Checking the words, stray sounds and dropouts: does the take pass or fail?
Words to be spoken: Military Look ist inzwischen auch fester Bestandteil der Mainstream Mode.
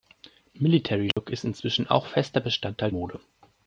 fail